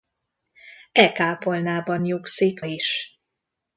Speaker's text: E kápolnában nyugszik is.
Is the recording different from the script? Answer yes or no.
no